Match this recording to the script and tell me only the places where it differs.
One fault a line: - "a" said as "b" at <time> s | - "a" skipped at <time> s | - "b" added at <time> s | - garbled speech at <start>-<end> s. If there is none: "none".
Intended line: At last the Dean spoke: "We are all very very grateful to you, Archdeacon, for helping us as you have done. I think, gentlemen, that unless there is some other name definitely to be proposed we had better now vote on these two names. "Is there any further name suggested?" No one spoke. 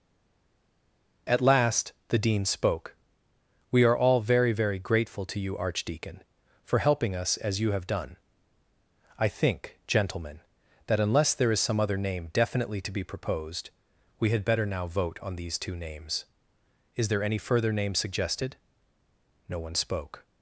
none